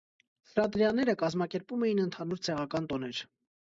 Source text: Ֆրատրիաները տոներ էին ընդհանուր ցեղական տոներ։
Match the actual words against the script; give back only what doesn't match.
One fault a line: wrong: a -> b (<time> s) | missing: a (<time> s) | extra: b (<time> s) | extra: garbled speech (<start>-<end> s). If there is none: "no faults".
wrong: տոներ -> կազմակերպում (1.2 s)